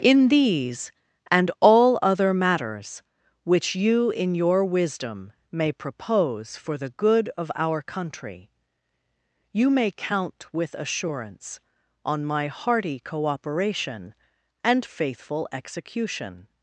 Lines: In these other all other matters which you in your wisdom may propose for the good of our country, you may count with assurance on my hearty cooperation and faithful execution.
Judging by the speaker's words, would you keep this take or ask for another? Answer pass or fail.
fail